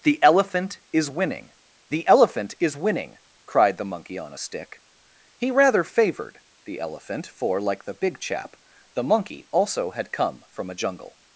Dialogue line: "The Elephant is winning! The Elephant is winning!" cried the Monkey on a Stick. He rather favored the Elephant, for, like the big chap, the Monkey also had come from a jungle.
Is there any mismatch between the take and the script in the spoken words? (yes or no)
no